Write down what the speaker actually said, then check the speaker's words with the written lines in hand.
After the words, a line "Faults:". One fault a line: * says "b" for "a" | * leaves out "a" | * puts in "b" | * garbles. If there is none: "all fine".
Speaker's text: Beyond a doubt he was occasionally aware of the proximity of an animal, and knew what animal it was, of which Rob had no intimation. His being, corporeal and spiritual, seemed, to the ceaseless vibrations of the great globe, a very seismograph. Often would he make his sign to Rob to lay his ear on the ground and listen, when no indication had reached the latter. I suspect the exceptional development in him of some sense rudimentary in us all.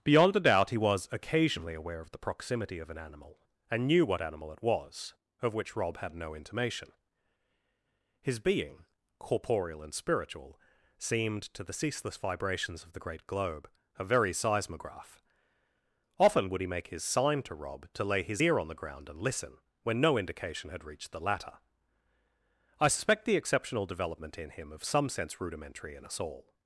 Beyond a doubt he was occasionally aware of the proximity of an animal, and knew what animal it was, of which Rob had no intimation. His being, corporeal and spiritual, seemed, to the ceaseless vibrations of the great globe, a very seismograph. Often would he make his sign to Rob to lay his ear on the ground and listen, when no indication had reached the latter. I suspect the exceptional development in him of some sense rudimentary in us all.
Faults:
all fine